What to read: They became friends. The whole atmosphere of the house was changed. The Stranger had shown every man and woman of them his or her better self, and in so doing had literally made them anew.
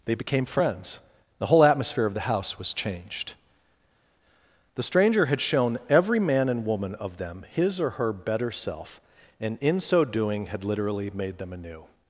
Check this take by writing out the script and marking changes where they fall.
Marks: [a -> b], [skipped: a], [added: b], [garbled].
They became friends. The whole atmosphere of the house was changed. The Stranger had shown every man and woman of them his or her better self, and in so doing had literally made them anew.